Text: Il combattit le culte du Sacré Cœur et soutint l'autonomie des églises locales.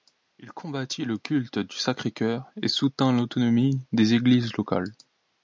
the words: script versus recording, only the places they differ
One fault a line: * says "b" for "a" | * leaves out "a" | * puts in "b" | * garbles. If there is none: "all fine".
all fine